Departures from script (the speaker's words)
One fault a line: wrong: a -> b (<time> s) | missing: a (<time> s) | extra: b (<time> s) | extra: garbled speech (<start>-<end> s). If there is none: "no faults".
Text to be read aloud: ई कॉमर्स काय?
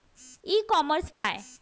no faults